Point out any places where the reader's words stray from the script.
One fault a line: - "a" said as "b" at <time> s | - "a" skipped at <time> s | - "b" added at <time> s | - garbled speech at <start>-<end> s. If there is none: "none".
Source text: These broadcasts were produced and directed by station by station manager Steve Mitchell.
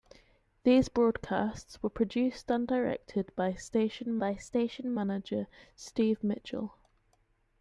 none